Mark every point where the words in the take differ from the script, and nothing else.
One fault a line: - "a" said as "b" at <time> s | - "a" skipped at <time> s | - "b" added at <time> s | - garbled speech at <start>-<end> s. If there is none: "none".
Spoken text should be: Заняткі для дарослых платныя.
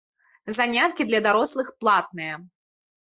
none